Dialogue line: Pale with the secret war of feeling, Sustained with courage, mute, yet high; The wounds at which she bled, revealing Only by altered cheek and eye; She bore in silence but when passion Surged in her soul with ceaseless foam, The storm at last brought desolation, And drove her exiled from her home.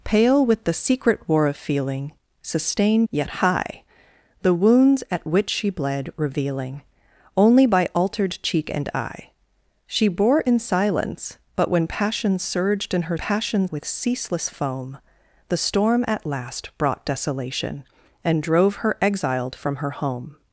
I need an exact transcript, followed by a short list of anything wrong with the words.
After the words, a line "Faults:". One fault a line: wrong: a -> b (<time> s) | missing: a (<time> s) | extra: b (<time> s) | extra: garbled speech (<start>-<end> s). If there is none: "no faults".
Pale with the secret war of feeling, Sustained yet high; The wounds at which she bled, revealing Only by altered cheek and eye; She bore in silence but when passion Surged in her passion with ceaseless foam, The storm at last brought desolation, And drove her exiled from her home.
Faults:
missing: with courage mute (3.1 s)
wrong: soul -> passion (13.2 s)